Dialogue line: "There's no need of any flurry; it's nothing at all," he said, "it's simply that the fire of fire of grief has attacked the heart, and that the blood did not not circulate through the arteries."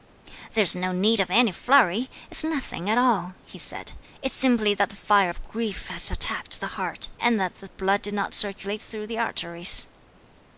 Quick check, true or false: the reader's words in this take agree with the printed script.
false